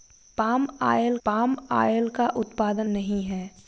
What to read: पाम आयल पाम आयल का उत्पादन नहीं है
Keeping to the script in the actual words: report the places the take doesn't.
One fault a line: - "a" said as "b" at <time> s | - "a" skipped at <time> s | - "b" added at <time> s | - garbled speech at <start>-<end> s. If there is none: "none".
none